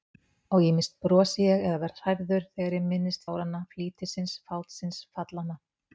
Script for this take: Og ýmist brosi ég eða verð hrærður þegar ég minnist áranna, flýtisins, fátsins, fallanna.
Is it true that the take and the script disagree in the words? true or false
false